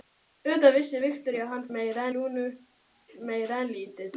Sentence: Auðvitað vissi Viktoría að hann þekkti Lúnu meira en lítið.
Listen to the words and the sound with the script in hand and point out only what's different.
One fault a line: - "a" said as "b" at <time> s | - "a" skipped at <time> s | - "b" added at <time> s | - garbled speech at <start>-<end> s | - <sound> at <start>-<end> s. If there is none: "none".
- "þekkti" said as "meira" at 1.8 s